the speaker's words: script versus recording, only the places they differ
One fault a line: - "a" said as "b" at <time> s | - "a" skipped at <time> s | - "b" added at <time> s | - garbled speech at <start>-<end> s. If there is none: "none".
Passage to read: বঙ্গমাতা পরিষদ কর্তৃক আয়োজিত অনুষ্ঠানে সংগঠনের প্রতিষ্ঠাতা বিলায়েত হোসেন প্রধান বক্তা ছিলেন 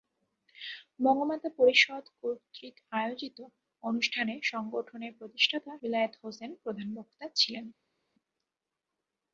none